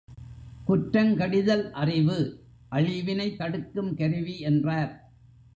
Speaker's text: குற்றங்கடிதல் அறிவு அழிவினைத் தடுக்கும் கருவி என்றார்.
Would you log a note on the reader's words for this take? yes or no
no